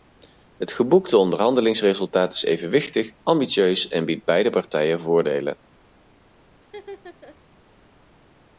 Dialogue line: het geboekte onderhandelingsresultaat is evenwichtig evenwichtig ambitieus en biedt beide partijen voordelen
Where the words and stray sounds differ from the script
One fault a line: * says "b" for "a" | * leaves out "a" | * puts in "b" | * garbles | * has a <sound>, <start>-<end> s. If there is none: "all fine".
* leaves out "evenwichtig"
* has a laugh, 6.6-7.4 s